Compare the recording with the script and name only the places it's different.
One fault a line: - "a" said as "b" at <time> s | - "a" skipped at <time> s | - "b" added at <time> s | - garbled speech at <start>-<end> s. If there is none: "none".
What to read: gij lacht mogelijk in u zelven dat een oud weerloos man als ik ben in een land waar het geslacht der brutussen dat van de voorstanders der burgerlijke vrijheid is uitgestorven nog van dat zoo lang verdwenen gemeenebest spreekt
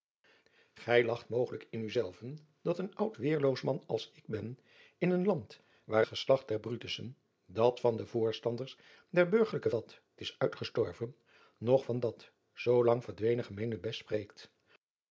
- "het" skipped at 6.0 s
- "vrijheid" said as "dat" at 9.7 s